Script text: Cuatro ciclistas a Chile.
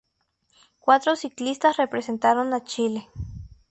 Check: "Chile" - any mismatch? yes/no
no